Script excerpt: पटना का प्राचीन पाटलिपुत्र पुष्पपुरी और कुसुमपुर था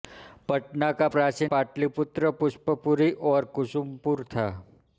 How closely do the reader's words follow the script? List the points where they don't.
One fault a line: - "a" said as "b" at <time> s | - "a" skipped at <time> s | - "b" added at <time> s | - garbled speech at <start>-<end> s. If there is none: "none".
none